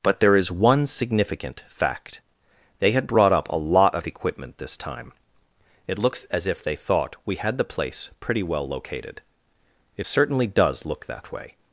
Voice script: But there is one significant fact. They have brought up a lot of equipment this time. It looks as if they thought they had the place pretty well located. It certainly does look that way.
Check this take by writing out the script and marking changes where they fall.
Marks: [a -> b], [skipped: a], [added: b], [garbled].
But there is one significant fact. They [have -> had] brought up a lot of equipment this time. It looks as if they thought [they -> we] had the place pretty well located. It certainly does look that way.